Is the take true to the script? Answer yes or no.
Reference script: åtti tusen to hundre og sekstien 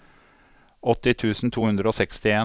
yes